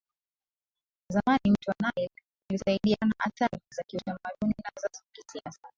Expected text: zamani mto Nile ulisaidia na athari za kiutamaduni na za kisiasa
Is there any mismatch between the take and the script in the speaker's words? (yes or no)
no